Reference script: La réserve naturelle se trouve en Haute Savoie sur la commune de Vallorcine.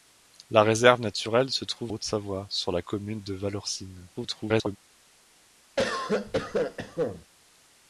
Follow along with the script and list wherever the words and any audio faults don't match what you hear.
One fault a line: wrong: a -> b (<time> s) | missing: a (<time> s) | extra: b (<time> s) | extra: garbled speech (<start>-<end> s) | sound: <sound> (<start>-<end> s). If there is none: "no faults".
missing: en (1.9 s)
extra: garbled speech (4.1-4.8 s)
sound: cough (5.8-7.3 s)